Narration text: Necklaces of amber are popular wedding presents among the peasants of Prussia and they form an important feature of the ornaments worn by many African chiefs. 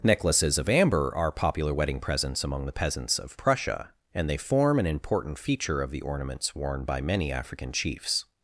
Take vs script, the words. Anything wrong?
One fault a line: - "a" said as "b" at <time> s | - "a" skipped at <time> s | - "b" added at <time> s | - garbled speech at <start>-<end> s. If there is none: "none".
none